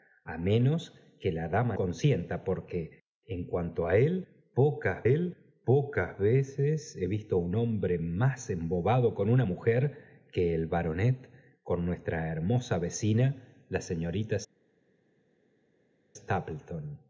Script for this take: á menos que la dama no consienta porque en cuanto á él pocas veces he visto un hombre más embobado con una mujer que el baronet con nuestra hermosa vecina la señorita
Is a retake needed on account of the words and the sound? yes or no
yes